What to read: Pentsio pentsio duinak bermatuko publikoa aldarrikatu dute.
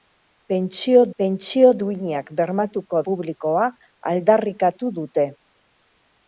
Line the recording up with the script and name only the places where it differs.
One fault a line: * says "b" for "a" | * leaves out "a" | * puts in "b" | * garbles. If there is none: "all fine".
all fine